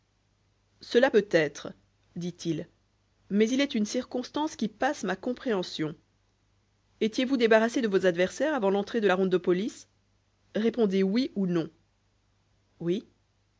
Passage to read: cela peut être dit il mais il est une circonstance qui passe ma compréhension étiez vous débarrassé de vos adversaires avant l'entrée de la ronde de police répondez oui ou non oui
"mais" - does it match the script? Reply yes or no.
yes